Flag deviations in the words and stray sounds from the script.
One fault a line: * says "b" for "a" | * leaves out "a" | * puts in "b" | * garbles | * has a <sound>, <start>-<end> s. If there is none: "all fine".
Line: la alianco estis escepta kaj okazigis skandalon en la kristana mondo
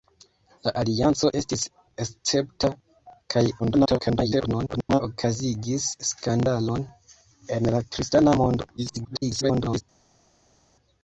* garbles
* garbles